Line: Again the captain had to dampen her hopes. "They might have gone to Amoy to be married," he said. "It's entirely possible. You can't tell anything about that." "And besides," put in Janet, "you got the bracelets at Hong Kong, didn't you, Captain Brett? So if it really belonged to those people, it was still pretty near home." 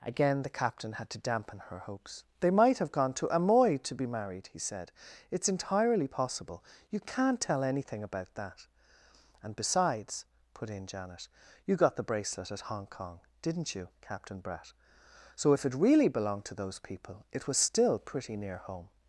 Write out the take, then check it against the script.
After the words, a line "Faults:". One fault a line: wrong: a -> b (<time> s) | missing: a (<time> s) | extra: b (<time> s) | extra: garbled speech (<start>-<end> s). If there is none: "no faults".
Again the captain had to dampen her hopes. "They might have gone to Amoy to be married," he said. "It's entirely possible. You can't tell anything about that." "And besides," put in Janet, "you got the bracelet at Hong Kong, didn't you, Captain Brett? So if it really belonged to those people, it was still pretty near home."
Faults:
wrong: bracelets -> bracelet (12.1 s)